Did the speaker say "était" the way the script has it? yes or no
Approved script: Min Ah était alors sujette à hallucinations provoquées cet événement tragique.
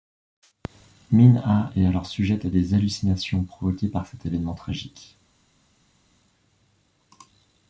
no